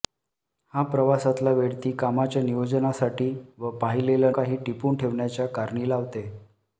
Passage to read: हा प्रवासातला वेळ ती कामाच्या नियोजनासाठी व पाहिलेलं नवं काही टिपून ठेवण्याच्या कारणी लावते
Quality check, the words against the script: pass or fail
fail